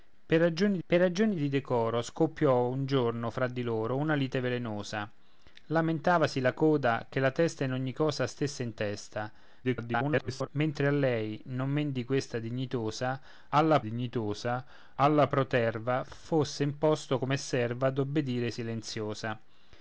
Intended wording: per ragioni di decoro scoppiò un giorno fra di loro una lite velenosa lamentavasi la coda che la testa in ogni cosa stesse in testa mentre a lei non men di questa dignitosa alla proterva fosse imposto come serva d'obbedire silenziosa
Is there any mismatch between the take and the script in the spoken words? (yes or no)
yes